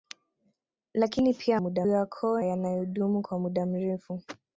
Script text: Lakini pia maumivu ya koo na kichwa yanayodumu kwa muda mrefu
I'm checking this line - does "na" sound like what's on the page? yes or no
no